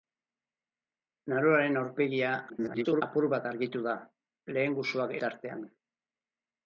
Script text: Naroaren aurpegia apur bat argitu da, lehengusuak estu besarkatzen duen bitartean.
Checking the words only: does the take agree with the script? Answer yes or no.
no